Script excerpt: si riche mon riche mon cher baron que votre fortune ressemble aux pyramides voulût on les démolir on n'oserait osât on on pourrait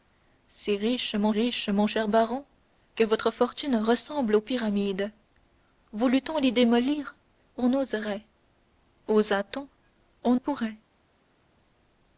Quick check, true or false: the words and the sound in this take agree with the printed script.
true